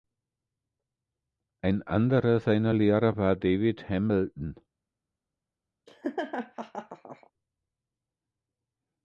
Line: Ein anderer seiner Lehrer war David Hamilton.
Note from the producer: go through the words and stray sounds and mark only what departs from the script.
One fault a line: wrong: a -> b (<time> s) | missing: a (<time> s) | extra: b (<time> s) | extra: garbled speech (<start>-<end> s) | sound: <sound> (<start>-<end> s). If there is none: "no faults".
sound: laugh (5.9-7.3 s)